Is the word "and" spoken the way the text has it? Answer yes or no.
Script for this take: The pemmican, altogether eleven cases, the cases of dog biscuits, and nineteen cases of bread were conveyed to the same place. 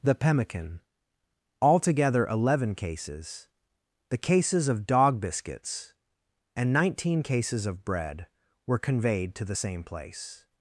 yes